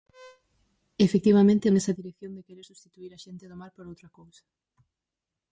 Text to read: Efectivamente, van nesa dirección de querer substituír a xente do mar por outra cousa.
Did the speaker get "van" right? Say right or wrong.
wrong